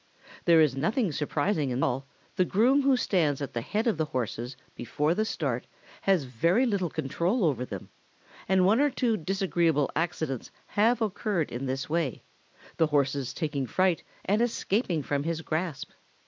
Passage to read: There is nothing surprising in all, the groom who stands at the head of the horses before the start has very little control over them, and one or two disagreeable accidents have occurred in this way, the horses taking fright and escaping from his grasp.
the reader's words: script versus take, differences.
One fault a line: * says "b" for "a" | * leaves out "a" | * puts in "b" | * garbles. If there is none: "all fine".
all fine